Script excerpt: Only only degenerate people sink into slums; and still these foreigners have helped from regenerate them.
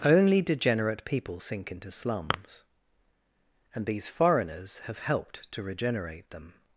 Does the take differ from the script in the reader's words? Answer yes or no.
yes